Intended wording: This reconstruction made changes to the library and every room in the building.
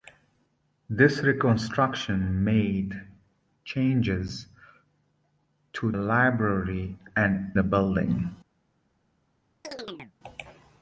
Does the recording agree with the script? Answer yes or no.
no